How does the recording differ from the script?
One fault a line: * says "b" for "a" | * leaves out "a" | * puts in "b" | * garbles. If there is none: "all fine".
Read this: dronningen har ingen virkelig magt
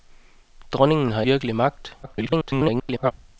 * leaves out "ingen"
* garbles